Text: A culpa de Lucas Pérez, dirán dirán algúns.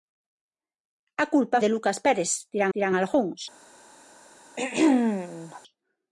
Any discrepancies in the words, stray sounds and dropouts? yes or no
yes